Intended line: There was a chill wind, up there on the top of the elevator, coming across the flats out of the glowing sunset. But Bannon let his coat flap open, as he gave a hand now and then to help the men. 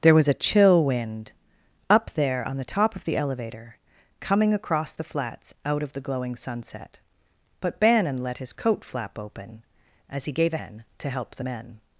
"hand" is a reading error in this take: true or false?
true